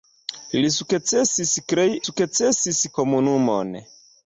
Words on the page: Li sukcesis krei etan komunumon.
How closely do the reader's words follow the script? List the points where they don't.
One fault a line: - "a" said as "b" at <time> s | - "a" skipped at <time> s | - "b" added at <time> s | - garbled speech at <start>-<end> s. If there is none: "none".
- "etan" said as "sukcesis" at 2.0 s